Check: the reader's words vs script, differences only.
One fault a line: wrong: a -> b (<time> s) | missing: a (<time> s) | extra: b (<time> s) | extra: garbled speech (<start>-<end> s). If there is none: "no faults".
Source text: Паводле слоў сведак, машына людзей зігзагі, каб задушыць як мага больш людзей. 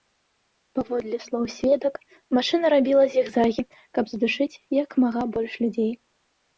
wrong: людзей -> рабіла (2.8 s)